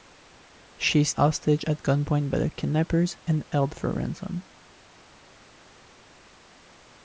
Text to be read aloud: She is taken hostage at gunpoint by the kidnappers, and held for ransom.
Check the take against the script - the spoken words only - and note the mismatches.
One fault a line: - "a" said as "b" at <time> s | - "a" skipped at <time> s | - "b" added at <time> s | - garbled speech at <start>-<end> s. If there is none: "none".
- "taken" skipped at 1.1 s